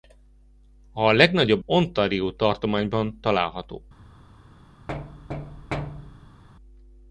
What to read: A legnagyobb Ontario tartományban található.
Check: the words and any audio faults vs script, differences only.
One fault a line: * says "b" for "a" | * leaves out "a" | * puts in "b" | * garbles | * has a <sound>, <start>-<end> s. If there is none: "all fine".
* has a thud, 4.9-6.4 s